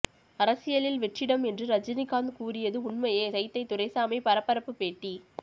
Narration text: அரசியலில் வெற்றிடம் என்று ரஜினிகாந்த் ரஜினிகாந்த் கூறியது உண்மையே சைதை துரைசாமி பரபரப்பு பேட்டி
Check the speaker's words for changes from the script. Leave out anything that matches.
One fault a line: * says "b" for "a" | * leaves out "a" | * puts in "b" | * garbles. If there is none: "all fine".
* leaves out "ரஜினிகாந்த்"